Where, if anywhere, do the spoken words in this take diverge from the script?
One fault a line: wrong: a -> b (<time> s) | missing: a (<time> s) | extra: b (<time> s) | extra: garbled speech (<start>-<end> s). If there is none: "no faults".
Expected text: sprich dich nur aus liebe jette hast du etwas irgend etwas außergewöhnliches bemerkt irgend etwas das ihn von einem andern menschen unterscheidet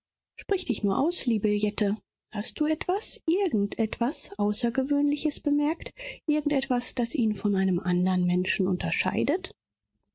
no faults